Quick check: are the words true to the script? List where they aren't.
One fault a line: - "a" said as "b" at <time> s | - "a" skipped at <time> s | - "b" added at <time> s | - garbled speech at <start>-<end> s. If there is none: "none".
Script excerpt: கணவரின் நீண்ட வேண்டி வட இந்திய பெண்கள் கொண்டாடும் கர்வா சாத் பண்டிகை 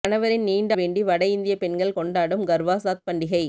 none